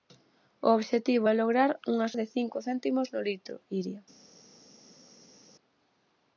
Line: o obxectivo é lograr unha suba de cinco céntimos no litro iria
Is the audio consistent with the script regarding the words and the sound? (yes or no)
no